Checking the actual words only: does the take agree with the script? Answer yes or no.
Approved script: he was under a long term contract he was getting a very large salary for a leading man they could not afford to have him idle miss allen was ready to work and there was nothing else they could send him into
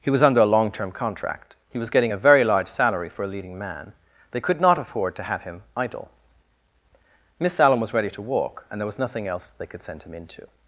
no